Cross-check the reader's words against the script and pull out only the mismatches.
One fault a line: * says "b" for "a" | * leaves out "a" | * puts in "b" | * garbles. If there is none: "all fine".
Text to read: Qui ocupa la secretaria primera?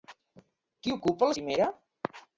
* leaves out "secretaria"